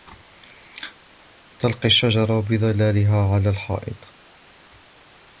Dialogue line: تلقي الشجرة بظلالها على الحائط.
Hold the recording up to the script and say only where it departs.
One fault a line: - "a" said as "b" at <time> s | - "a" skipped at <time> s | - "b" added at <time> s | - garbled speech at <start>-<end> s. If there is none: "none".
none